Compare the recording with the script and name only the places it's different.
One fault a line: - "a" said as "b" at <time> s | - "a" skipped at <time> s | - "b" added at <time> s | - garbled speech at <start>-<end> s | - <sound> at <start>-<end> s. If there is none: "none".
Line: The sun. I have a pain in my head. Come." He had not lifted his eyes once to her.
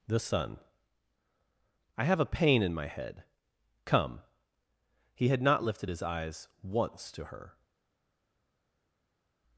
none